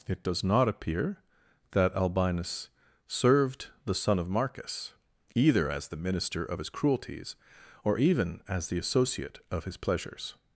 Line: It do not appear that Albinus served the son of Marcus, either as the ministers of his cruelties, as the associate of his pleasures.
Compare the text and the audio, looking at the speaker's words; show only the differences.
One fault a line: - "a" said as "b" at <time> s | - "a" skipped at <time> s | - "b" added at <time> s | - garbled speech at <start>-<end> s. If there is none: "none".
- "do" said as "does" at 0.2 s
- "ministers" said as "minister" at 6.0 s
- "or even" added at 7.8 s